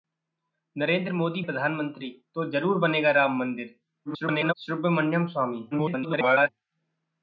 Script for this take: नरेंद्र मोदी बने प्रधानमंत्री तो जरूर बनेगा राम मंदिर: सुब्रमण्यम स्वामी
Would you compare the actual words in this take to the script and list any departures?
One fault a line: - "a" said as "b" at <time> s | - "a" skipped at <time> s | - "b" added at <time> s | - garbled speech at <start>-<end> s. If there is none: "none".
- "बने" skipped at 1.4 s
- garbled speech at 4.0-4.5 s
- garbled speech at 5.7-6.5 s